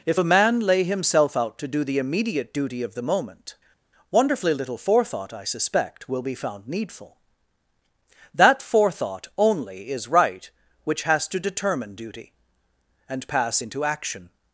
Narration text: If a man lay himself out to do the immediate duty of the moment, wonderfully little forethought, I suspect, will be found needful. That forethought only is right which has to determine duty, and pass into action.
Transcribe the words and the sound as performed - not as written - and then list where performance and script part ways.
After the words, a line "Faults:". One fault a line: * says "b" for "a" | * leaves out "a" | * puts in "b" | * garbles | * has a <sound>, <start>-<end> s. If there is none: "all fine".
If a man lay himself out to do the immediate duty of the moment, wonderfully little forethought, I suspect, will be found needful. That forethought only is right which has to determine duty, and pass into action.
Faults:
all fine